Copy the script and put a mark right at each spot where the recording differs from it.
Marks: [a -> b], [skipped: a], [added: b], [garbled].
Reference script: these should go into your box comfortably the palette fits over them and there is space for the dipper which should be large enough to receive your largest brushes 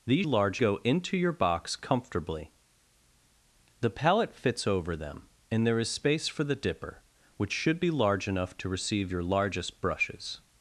these [should -> large] go into your box comfortably the palette fits over them and there is space for the dipper which should be large enough to receive your largest brushes